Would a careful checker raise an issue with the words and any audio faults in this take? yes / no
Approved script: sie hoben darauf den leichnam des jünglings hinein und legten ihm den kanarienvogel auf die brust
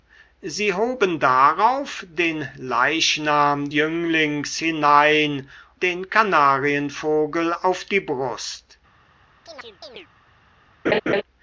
yes